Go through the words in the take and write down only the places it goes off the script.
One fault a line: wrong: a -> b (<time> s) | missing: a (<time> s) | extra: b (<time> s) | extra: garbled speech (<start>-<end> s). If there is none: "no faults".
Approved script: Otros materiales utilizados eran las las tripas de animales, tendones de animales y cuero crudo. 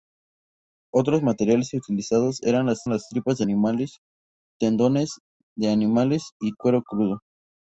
no faults